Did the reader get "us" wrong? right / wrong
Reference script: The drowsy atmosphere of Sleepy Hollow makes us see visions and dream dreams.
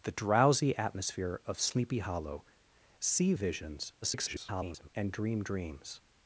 wrong